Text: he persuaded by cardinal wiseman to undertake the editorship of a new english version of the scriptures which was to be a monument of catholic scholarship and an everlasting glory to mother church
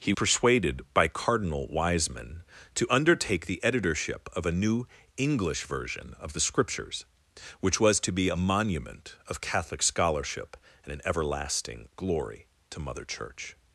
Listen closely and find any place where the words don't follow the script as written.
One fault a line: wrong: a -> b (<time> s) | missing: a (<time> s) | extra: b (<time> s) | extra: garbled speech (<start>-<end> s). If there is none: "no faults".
no faults